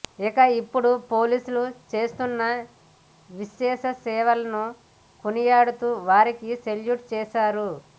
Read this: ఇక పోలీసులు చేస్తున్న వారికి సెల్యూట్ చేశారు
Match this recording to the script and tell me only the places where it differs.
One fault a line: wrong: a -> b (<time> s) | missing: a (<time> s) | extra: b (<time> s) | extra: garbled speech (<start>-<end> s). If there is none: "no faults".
extra: ఇప్పుడు (0.6 s)
extra: విశేష సేవలను కొనియాడుతూ (3.3 s)